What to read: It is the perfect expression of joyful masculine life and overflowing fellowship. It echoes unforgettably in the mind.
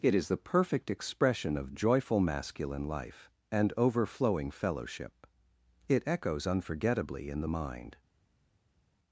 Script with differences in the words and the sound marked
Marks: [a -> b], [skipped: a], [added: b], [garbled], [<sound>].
It is the perfect expression of joyful masculine life and overflowing fellowship. It echoes unforgettably in the mind.